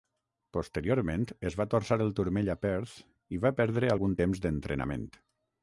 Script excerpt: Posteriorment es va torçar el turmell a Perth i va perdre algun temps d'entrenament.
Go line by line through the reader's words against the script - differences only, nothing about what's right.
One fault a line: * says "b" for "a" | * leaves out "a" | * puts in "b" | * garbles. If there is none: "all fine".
all fine